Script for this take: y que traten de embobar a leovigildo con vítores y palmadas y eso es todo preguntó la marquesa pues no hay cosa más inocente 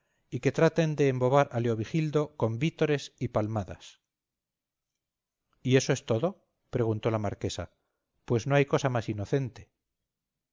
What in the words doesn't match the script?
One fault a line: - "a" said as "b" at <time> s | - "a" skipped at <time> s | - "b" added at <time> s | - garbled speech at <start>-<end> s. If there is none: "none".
none